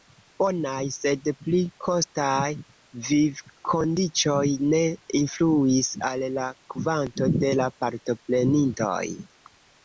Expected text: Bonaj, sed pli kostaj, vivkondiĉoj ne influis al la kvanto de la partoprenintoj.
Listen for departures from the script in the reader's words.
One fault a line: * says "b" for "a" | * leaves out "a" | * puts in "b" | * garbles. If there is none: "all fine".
all fine